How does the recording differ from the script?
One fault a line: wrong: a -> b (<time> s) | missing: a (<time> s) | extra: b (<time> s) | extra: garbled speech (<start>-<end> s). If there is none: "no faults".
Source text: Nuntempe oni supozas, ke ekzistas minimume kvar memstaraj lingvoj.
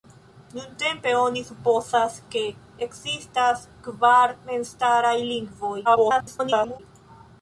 missing: minimume (3.7 s)
extra: garbled speech (5.8-6.8 s)